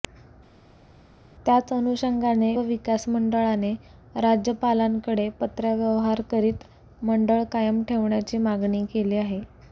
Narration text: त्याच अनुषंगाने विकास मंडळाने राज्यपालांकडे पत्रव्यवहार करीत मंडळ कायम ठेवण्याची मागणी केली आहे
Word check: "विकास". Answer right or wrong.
right